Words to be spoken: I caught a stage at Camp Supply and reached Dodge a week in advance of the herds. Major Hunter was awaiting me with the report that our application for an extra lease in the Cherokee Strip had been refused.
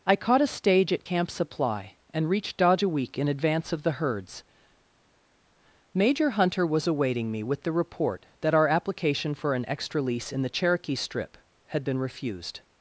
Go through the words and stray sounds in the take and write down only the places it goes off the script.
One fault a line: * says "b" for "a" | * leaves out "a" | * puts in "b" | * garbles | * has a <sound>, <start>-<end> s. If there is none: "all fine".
all fine